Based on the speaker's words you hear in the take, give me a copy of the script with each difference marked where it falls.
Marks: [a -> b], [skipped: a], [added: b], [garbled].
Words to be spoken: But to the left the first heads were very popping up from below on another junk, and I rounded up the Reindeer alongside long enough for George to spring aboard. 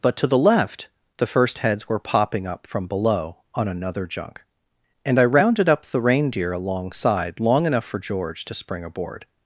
But to the left the first heads were [skipped: very] popping up from below on another junk, and I rounded up the Reindeer alongside long enough for George to spring aboard.